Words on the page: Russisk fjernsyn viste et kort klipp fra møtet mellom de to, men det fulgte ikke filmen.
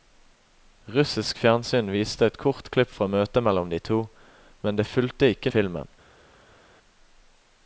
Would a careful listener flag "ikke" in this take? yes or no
no